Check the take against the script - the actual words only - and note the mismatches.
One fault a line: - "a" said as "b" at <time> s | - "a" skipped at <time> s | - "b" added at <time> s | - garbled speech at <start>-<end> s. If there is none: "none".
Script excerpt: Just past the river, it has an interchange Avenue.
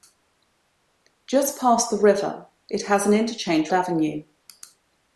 none